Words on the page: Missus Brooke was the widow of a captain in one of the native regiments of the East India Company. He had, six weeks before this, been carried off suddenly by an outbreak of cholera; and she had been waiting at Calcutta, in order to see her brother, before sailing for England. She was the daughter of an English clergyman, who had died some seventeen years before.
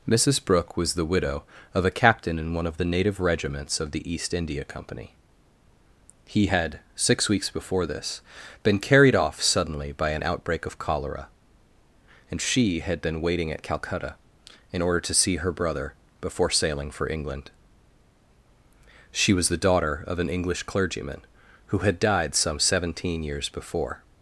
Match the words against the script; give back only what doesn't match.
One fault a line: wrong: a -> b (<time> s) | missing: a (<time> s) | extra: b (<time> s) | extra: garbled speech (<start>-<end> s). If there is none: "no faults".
no faults